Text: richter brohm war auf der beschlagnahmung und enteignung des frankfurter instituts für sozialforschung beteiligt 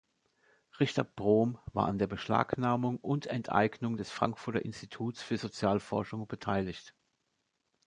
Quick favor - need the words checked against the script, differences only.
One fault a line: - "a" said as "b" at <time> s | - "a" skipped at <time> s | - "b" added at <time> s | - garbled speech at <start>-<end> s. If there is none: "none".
- "auf" said as "an" at 1.9 s